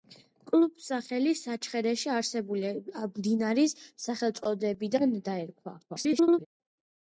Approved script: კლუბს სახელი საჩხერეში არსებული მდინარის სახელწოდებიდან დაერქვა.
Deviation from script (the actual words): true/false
true